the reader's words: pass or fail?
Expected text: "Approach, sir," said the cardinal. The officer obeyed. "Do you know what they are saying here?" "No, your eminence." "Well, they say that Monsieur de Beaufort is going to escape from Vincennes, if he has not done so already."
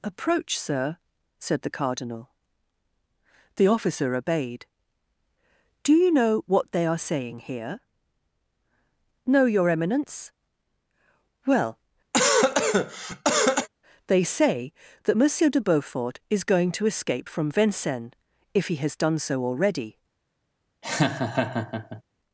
fail